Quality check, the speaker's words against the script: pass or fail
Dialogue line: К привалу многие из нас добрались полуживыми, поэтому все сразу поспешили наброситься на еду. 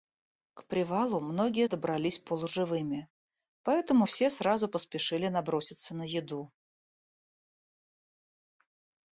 fail